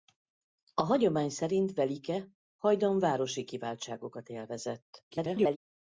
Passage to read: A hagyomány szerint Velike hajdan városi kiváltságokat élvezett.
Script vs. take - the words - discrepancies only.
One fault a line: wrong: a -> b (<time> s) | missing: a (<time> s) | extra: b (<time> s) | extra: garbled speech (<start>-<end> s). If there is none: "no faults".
extra: garbled speech (5.1-5.6 s)